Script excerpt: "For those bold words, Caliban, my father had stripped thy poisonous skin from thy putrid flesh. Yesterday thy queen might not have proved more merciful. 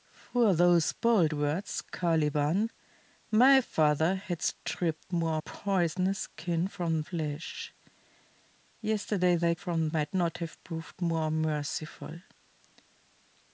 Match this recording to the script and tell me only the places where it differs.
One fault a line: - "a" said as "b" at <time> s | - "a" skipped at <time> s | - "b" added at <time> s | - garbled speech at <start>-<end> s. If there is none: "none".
- "thy" said as "more" at 5.1 s
- "thy putrid" skipped at 7.0 s
- "queen" said as "from" at 9.6 s